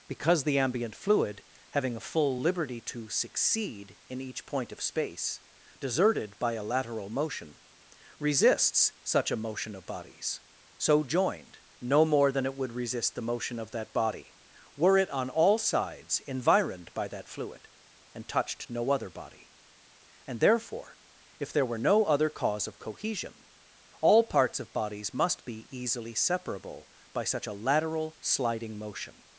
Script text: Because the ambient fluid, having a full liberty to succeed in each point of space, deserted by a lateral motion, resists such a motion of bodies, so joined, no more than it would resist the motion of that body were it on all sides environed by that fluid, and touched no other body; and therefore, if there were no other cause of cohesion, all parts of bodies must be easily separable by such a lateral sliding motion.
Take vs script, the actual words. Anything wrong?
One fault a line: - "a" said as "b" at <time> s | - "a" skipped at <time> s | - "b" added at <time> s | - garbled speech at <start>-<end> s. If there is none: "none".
none